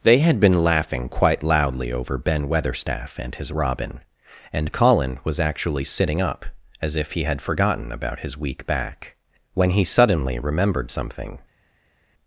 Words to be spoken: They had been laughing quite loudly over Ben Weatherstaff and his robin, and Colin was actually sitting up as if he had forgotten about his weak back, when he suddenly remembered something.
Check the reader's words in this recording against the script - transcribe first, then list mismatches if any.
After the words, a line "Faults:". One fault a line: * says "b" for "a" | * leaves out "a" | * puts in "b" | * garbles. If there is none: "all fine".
They had been laughing quite loudly over Ben Weatherstaff and his robin, and Colin was actually sitting up as if he had forgotten about his weak back, when he suddenly remembered something.
Faults:
all fine